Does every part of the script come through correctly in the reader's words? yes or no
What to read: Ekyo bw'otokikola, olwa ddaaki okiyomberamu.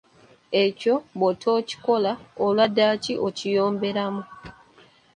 yes